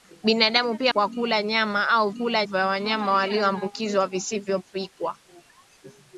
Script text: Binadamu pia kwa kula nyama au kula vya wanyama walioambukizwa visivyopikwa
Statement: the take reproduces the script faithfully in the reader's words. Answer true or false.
true